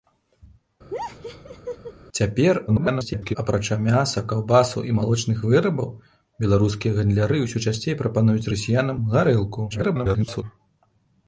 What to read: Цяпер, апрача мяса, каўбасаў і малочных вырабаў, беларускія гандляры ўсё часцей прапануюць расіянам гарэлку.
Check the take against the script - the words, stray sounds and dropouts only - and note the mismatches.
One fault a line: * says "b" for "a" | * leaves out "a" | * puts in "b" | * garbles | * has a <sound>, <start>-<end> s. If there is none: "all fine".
* has a laugh, 0.9-1.9 s
* garbles
* garbles